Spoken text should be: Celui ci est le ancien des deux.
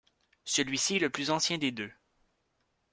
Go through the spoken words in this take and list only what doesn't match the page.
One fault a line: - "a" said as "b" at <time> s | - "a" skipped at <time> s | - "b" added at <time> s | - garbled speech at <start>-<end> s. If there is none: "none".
- "plus" added at 1.1 s